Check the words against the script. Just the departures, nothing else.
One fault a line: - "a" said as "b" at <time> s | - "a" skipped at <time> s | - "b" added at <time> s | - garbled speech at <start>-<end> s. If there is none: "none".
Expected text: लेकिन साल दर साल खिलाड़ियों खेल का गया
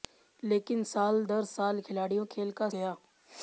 none